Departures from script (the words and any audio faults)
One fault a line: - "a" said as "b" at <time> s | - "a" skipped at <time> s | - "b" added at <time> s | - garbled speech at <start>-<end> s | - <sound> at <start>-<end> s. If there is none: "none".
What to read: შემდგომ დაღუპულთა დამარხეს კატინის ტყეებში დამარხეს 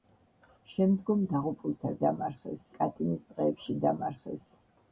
none